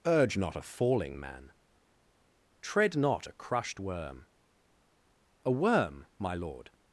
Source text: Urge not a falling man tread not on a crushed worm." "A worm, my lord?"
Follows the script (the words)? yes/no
no